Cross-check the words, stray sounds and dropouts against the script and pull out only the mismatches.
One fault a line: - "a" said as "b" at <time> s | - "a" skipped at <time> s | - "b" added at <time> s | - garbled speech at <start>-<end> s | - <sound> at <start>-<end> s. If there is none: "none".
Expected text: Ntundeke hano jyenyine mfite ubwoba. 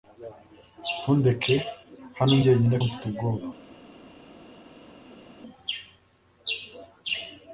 none